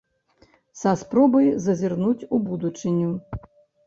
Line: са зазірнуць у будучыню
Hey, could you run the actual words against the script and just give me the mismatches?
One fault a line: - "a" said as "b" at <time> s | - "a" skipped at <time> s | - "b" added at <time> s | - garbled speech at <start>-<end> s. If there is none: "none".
- "спробай" added at 1.0 s